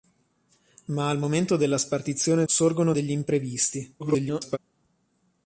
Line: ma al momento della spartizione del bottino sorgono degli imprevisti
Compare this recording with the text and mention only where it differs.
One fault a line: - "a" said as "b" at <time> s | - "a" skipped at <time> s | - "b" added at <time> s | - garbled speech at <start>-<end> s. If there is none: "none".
- "del bottino" skipped at 2.4 s
- garbled speech at 4.0-4.6 s